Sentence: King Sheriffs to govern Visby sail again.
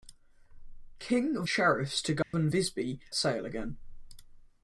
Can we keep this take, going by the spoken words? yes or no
yes